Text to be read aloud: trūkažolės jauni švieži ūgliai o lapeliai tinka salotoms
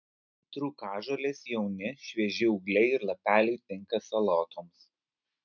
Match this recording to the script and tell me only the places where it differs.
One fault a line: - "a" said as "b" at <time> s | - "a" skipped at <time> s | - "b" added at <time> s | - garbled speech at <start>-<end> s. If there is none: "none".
- "o" said as "ir" at 2.9 s